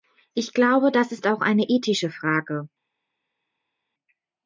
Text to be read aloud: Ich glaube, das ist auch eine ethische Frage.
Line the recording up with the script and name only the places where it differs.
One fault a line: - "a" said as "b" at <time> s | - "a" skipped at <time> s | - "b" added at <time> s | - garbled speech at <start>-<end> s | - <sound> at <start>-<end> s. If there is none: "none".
none